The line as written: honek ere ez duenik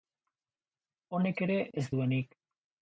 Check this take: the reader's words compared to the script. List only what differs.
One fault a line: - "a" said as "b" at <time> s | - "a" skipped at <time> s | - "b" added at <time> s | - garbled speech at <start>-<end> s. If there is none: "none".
none